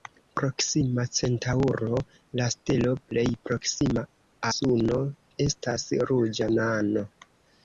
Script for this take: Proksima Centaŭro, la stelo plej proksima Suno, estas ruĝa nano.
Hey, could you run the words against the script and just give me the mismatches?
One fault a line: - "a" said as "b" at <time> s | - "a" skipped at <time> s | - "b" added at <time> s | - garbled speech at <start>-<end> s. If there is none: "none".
none